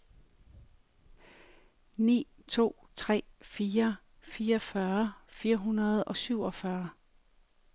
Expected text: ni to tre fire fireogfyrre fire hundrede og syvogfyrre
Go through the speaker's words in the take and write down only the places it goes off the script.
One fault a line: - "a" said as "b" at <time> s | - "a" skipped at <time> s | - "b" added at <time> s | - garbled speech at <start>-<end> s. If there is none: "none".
none